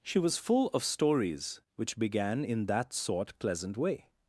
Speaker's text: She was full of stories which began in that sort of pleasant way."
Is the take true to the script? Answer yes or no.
no